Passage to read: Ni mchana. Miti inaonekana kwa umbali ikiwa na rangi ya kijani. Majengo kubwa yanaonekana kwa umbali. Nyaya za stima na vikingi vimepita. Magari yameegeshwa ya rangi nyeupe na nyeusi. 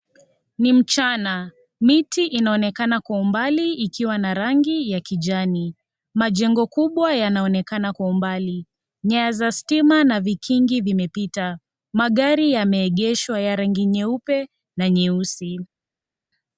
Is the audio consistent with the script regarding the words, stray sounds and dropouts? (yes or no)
yes